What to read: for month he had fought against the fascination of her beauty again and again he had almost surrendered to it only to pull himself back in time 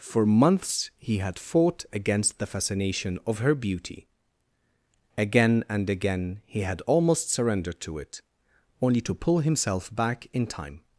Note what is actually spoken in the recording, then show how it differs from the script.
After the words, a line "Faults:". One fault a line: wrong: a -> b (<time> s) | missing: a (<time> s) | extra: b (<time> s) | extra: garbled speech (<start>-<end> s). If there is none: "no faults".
for months he had fought against the fascination of her beauty again and again he had almost surrendered to it only to pull himself back in time
Faults:
wrong: month -> months (0.2 s)